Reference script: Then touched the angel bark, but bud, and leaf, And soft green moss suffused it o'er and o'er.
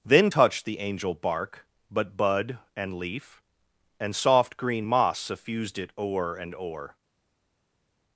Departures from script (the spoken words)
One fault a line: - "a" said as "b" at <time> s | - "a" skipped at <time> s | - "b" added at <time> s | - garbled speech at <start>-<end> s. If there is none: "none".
none